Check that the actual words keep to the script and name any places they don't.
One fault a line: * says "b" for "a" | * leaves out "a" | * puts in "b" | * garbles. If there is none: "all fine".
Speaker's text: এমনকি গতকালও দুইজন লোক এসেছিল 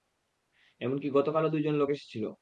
all fine